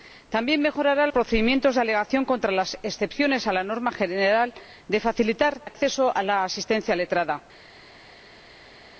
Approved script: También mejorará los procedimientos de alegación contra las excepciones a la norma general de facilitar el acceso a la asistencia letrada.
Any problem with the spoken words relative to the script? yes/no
yes